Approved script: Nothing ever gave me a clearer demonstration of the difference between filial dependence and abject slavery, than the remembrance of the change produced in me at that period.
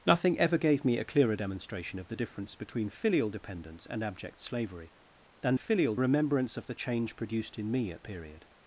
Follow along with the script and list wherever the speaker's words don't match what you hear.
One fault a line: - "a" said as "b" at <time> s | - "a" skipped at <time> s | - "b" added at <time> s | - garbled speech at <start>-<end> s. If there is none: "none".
- "the" said as "filial" at 5.5 s
- "that" skipped at 8.0 s